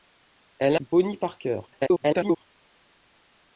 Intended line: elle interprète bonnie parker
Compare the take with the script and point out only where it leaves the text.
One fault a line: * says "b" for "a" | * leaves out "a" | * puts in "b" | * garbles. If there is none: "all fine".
* leaves out "interprète"
* garbles